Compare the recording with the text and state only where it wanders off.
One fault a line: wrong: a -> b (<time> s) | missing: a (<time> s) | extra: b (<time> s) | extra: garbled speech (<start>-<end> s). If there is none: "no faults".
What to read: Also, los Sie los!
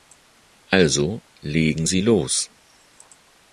wrong: los -> legen (1.4 s)